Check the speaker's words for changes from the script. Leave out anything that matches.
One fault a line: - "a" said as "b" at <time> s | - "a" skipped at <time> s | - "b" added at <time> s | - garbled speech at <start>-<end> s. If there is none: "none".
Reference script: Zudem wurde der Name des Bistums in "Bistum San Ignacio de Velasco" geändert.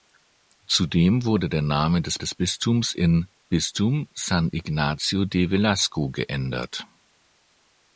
- "des" added at 2.2 s